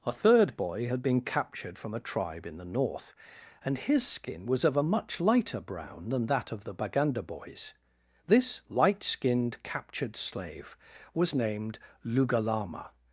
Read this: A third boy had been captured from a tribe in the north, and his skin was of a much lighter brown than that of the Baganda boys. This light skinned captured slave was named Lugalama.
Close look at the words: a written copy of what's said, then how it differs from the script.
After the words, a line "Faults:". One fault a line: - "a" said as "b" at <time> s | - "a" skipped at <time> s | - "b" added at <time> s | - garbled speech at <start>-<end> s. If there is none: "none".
A third boy had been captured from a tribe in the north, and his skin was of a much lighter brown than that of the Baganda boys. This light skinned captured slave was named Lugalama.
Faults:
none